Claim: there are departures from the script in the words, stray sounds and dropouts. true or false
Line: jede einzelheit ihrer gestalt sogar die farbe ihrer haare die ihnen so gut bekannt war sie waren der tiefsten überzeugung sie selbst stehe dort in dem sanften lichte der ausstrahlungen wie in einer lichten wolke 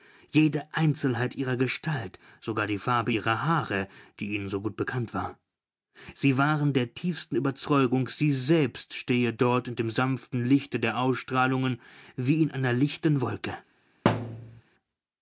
true